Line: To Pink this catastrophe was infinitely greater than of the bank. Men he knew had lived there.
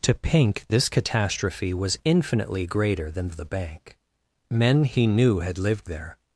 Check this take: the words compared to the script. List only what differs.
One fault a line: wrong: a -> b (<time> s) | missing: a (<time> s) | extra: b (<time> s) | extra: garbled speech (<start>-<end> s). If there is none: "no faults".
no faults